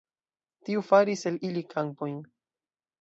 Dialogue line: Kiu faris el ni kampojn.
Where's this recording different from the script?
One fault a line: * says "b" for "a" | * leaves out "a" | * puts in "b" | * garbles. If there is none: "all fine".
* says "Tiu" for "Kiu"
* says "ili" for "ni"